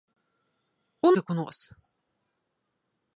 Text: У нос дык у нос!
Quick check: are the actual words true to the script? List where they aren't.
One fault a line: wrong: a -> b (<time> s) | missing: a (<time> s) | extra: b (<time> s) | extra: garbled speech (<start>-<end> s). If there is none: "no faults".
missing: нос (1.1 s)